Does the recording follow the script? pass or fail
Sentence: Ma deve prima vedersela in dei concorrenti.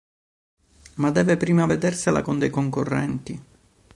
fail